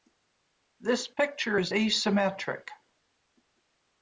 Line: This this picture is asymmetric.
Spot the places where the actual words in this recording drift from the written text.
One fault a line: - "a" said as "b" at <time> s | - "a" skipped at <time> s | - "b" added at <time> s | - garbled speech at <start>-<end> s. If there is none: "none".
- "this" skipped at 1.1 s